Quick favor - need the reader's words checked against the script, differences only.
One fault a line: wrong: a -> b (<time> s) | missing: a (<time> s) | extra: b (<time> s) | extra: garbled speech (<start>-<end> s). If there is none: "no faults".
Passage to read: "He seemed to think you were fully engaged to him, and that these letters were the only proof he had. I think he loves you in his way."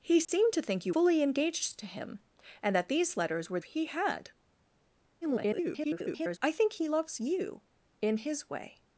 missing: were (0.9 s)
missing: the only proof (3.6 s)
extra: garbled speech (5.2-6.4 s)